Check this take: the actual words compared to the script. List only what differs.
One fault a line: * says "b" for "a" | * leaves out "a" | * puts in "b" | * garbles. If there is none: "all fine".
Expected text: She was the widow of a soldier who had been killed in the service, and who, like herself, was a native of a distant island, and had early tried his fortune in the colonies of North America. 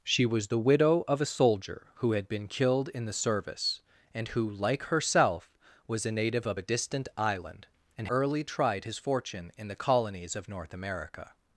* leaves out "had"